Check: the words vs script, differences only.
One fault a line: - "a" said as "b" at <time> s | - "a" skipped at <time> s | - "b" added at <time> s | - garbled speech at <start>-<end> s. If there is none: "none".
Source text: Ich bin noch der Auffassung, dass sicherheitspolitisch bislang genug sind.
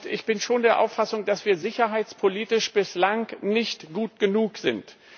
- "noch" said as "schon" at 0.4 s
- "wir" added at 1.4 s
- "nicht gut" added at 3.4 s